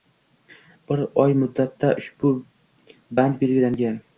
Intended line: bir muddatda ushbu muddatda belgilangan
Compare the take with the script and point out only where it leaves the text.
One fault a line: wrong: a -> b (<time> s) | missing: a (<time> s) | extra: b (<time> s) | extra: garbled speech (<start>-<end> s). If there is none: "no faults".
extra: oy (1.2 s)
wrong: muddatda -> band (3.2 s)